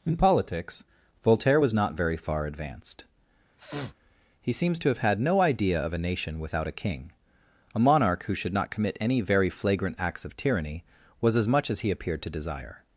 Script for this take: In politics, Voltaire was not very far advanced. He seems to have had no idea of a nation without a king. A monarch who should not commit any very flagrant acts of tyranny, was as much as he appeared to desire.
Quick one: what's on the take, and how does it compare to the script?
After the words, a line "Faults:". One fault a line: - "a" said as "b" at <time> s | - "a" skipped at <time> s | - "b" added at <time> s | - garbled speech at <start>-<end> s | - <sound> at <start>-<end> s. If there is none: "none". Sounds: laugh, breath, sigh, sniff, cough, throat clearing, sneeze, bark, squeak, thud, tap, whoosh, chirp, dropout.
In politics, Voltaire was not very far advanced. He seems to have had no idea of a nation without a king. A monarch who should not commit any very flagrant acts of tyranny, was as much as he appeared to desire.
Faults:
- sniff at 3.6-3.9 s